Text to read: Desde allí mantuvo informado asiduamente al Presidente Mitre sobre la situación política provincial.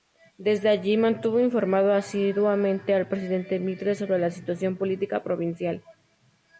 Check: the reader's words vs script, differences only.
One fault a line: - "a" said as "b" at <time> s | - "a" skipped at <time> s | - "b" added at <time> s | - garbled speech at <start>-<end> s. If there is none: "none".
none